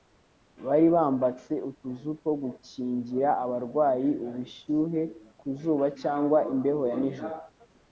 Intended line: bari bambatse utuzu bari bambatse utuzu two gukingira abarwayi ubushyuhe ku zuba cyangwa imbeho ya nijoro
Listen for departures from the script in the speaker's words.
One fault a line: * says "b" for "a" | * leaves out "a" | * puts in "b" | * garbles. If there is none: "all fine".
* leaves out "bari bambatse utuzu"